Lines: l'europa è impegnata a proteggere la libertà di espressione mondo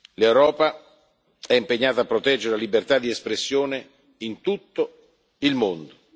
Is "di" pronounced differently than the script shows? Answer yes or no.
no